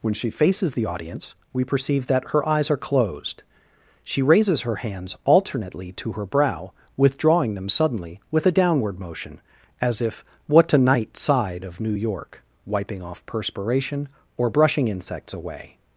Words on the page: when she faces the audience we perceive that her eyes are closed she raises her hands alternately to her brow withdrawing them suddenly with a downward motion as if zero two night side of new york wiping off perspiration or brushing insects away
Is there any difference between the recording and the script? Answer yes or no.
yes